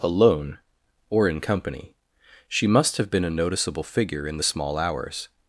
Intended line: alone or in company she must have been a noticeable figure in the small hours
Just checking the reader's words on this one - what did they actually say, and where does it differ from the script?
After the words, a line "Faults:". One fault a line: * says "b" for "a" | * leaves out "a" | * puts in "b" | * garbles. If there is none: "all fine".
alone or in company she must have been a noticeable figure in the small hours
Faults:
all fine